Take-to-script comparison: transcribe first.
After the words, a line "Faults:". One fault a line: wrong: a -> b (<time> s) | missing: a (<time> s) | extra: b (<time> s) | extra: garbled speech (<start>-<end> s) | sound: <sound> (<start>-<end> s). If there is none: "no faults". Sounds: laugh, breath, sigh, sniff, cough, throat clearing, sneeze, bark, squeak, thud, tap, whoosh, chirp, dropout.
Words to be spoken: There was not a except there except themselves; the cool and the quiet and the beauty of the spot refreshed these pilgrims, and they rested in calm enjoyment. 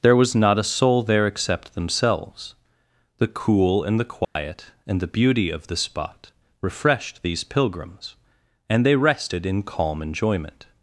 There was not a soul there except themselves; the cool and the quiet and the beauty of the spot refreshed these pilgrims, and they rested in calm enjoyment.
Faults:
wrong: except -> soul (0.6 s)
sound: dropout (4.2-4.4 s)